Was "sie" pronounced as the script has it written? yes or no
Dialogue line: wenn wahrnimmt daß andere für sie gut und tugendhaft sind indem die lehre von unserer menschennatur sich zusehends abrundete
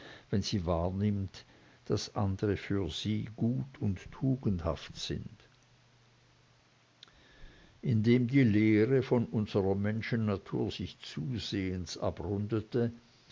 yes